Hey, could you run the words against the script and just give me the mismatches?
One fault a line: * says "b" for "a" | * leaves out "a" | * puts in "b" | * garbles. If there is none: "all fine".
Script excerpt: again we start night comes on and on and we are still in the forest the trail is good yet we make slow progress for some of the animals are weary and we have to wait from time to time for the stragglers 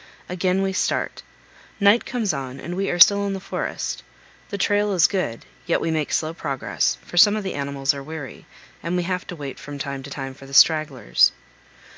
* leaves out "on and"